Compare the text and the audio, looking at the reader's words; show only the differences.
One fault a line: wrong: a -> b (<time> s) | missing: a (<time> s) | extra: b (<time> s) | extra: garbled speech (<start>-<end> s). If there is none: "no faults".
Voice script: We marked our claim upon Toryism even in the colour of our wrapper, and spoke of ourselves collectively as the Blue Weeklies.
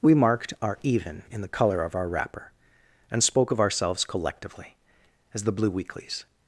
missing: claim upon Toryism (0.8 s)